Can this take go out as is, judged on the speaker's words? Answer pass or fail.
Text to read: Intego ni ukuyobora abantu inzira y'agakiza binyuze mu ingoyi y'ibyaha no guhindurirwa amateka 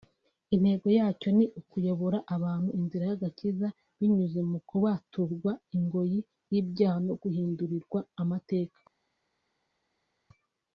fail